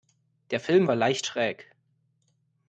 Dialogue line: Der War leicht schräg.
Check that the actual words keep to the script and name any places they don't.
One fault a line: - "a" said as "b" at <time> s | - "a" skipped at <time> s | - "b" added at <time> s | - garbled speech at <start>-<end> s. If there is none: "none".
- "Film" added at 0.6 s